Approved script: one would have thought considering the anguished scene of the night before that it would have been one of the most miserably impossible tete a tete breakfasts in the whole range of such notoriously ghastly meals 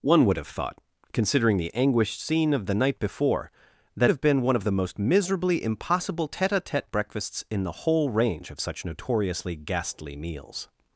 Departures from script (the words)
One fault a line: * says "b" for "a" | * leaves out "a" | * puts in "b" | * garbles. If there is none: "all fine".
* leaves out "it would"